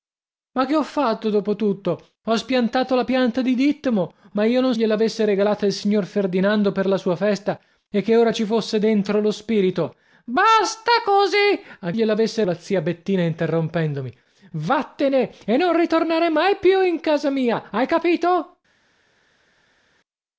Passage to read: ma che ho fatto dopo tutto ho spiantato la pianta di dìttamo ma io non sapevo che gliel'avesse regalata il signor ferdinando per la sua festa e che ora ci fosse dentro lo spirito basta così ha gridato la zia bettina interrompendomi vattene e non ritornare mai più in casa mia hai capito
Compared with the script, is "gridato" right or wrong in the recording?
wrong